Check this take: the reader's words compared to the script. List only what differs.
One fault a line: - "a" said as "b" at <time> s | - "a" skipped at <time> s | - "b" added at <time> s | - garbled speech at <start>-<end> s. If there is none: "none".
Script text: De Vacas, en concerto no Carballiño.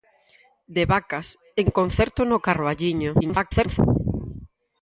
- garbled speech at 3.2-3.8 s